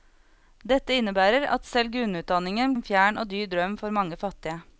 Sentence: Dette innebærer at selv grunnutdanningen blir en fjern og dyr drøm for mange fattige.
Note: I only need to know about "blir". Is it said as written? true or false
false